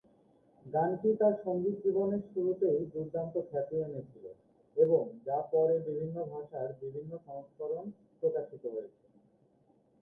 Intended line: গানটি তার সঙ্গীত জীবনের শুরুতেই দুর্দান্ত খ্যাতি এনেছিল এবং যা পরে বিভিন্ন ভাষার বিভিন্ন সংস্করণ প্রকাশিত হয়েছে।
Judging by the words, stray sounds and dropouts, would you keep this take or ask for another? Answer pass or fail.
pass